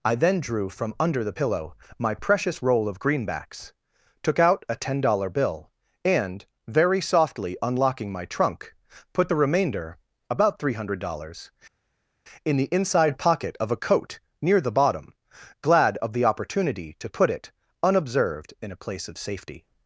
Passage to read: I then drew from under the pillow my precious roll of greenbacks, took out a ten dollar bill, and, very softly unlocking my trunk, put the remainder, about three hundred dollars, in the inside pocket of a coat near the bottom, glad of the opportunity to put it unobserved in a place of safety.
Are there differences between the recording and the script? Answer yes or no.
no